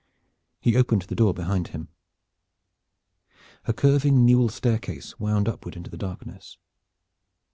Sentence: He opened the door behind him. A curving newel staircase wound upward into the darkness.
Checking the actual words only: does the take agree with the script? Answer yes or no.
yes